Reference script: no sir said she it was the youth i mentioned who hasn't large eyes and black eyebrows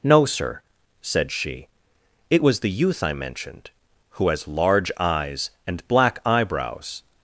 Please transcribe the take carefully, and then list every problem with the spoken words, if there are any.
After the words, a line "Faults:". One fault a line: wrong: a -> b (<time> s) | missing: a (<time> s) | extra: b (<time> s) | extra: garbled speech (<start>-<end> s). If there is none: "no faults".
no sir said she it was the youth i mentioned who has large eyes and black eyebrows
Faults:
wrong: hasn't -> has (4.3 s)